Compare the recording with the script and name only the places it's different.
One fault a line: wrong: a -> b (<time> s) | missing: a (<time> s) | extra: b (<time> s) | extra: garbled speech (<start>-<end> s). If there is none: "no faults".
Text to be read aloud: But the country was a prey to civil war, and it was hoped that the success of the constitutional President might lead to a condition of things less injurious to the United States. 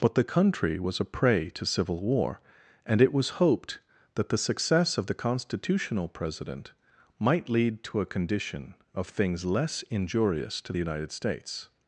no faults